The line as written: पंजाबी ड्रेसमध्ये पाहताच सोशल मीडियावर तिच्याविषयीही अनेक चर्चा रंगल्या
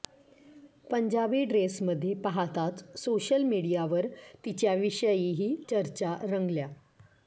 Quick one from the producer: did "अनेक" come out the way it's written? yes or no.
no